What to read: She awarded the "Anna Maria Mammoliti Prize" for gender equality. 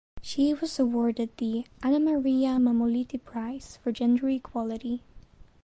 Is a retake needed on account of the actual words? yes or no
yes